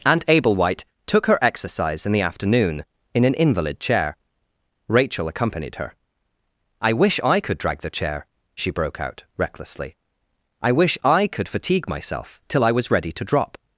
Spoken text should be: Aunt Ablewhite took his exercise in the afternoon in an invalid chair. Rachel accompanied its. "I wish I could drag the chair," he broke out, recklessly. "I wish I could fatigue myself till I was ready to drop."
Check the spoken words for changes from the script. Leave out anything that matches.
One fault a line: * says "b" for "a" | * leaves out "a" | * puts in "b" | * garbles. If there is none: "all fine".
* says "her" for "his"
* says "her" for "its"
* says "she" for "he"